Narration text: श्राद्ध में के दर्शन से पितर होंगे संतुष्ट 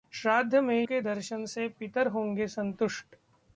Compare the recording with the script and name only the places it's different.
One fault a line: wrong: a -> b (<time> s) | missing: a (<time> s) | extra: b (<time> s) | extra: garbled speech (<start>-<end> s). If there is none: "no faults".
no faults